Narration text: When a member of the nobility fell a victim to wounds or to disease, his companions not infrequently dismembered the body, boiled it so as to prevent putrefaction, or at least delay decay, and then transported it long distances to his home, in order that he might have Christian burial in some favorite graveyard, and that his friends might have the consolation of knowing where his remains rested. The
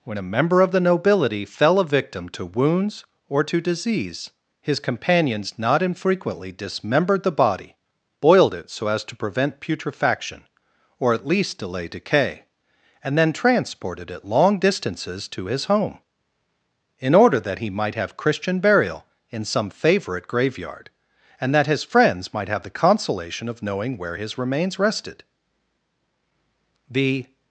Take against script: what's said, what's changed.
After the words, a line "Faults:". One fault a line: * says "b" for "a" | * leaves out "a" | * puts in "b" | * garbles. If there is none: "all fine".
When a member of the nobility fell a victim to wounds or to disease, his companions not infrequently dismembered the body, boiled it so as to prevent putrefaction, or at least delay decay, and then transported it long distances to his home, in order that he might have Christian burial in some favorite graveyard, and that his friends might have the consolation of knowing where his remains rested. The
Faults:
all fine